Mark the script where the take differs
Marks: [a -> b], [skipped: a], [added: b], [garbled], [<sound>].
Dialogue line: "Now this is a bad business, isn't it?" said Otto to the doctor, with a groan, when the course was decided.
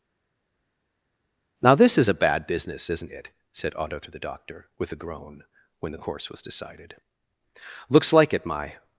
"Now this is a bad business, isn't it?" said Otto to the doctor, with a groan, when the course was decided. [added: Looks like it my]